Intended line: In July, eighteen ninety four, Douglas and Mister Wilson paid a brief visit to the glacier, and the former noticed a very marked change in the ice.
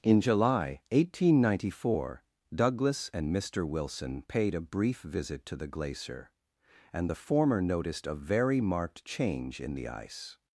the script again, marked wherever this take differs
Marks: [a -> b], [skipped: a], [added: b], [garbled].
In July, eighteen ninety four, Douglas and Mister Wilson paid a brief visit to the glacier, and the former noticed a very marked change in the ice.